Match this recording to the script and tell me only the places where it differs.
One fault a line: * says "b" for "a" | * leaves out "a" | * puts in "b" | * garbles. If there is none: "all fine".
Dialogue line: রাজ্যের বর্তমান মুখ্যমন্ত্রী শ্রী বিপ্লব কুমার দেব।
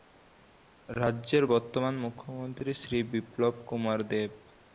all fine